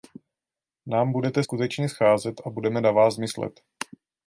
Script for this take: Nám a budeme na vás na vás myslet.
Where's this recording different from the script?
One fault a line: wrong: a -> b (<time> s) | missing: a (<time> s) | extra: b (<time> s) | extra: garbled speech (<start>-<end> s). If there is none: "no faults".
extra: budete skutečně scházet (1.1 s)
missing: na vás (3.2 s)